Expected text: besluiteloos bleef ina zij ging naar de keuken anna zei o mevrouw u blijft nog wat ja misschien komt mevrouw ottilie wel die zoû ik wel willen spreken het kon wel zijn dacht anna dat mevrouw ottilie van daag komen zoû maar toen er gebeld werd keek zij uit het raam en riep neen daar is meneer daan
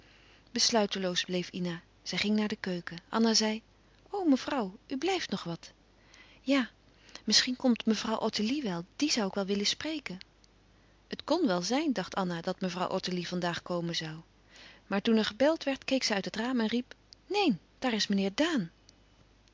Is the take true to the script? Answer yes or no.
yes